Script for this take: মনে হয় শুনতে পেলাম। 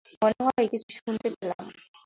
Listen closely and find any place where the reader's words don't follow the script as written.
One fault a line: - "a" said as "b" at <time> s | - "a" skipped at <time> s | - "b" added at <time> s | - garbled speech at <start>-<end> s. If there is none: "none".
- "কিছু" added at 0.7 s